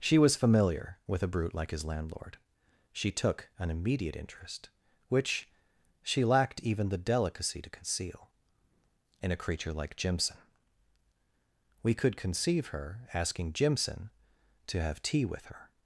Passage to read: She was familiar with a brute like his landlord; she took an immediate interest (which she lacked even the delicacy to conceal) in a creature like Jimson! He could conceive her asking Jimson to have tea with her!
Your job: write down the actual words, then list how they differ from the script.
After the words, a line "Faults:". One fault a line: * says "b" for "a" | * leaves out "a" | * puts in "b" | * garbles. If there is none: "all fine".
She was familiar with a brute like his landlord; she took an immediate interest (which she lacked even the delicacy to conceal) in a creature like Jimson! We could conceive her asking Jimson to have tea with her!
Faults:
* says "We" for "He"